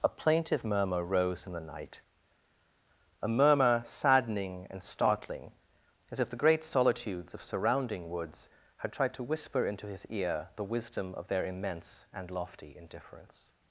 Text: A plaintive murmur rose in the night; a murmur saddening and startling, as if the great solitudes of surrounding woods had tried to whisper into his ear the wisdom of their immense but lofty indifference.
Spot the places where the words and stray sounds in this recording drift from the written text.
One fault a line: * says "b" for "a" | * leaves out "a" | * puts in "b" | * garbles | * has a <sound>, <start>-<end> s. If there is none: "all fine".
* says "and" for "but"